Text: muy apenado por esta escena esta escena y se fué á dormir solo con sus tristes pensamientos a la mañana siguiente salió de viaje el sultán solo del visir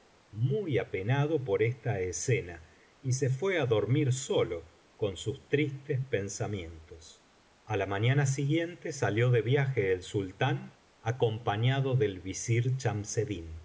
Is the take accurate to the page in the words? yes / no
no